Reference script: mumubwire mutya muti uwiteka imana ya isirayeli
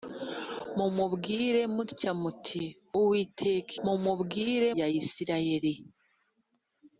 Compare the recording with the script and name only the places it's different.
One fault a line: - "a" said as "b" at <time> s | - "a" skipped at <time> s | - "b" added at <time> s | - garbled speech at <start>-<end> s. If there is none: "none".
- "imana" said as "mumubwire" at 3.8 s